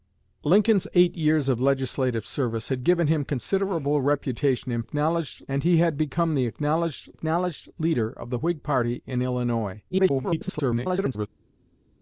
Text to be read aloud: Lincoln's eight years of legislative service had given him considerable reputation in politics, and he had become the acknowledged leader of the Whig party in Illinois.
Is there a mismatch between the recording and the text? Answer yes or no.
yes